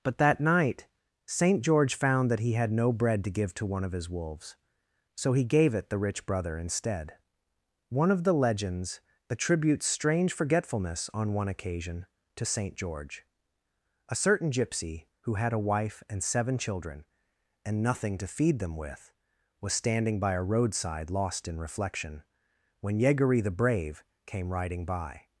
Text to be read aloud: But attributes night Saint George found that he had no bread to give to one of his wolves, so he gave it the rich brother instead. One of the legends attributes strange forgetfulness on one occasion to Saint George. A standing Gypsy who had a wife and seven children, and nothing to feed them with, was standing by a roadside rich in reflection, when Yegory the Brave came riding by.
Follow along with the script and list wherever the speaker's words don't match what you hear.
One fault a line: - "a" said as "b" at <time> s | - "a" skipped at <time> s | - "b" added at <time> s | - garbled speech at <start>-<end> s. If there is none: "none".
- "attributes" said as "that" at 0.2 s
- "standing" said as "certain" at 14.2 s
- "rich" said as "lost" at 21.1 s